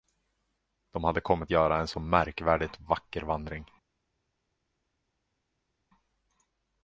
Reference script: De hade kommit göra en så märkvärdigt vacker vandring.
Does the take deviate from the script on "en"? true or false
false